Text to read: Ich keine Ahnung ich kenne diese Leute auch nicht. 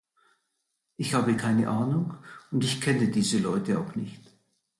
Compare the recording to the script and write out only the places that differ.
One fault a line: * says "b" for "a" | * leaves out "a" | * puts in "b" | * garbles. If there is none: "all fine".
* puts in "habe"
* puts in "und"